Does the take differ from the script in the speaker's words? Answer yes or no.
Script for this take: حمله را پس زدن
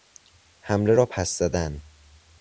no